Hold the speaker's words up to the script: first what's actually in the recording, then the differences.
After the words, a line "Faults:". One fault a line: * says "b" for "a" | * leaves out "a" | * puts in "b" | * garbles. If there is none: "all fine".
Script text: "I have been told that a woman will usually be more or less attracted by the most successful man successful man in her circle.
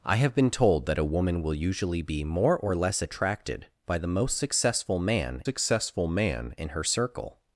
"I have been told that a woman will usually be more or less attracted by the most successful man successful man in her circle.
Faults:
all fine